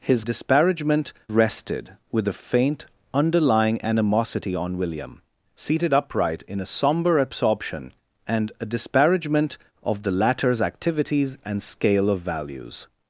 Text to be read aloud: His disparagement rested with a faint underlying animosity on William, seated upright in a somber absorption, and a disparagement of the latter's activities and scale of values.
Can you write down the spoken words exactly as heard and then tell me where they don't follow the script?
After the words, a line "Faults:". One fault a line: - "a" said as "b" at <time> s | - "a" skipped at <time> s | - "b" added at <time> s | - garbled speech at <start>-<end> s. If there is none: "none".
His disparagement rested with a faint underlying animosity on William, seated upright in a somber absorption, and a disparagement of the latter's activities and scale of values.
Faults:
none